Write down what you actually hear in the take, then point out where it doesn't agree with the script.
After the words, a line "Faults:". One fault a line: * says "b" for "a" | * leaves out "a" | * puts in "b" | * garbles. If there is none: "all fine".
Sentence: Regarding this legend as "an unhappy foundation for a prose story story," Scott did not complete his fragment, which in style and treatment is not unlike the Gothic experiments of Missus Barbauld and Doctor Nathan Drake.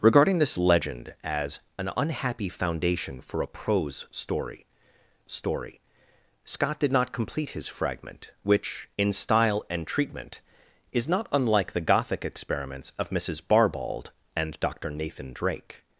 Regarding this legend as "an unhappy foundation for a prose story story," Scott did not complete his fragment, which in style and treatment is not unlike the Gothic experiments of Missus Barbauld and Doctor Nathan Drake.
Faults:
all fine